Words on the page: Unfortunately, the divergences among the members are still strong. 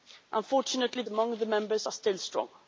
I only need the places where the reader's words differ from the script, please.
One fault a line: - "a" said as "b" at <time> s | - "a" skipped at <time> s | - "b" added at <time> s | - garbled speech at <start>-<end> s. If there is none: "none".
- "the divergences" skipped at 1.0 s